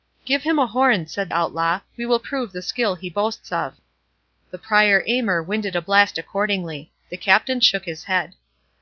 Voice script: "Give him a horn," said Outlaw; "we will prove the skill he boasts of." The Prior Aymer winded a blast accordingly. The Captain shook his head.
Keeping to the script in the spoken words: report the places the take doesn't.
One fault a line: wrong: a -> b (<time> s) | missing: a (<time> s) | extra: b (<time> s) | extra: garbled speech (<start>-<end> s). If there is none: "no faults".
no faults